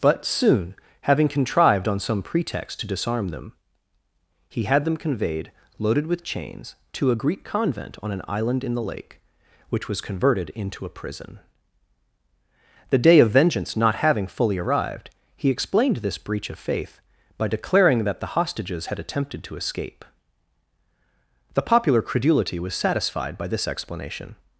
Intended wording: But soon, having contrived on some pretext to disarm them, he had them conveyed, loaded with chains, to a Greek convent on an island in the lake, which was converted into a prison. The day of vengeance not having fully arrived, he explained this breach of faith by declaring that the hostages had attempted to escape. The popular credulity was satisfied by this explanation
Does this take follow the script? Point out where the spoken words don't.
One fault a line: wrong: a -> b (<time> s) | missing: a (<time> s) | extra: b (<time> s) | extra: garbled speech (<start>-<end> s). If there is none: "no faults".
no faults